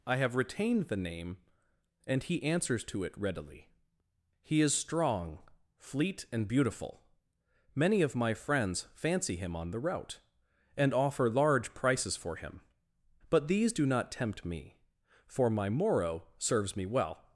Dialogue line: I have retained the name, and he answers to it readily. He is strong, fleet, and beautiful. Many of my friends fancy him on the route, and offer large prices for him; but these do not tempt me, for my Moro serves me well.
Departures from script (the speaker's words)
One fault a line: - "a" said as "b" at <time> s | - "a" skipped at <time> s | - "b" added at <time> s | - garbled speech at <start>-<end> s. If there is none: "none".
none